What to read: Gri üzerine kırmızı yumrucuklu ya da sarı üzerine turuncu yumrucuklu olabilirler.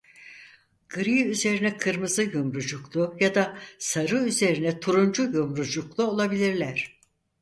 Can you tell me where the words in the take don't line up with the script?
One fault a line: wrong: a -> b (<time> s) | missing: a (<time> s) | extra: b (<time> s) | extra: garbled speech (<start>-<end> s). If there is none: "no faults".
no faults